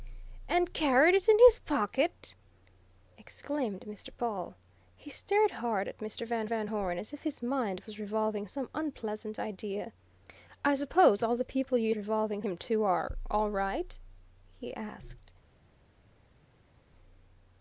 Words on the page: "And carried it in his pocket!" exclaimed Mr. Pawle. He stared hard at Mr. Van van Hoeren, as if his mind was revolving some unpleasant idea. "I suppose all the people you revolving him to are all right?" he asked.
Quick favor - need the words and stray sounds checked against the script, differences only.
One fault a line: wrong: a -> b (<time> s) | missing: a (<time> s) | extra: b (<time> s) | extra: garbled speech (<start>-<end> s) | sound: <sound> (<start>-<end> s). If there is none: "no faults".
no faults